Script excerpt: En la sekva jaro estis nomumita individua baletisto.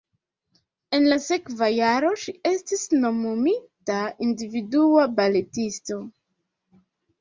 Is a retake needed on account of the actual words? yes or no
yes